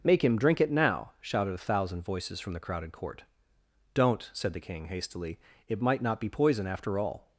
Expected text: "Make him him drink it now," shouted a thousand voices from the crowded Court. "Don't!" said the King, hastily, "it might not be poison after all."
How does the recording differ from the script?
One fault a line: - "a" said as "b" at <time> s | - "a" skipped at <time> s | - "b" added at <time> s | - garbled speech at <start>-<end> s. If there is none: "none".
- "him" skipped at 0.4 s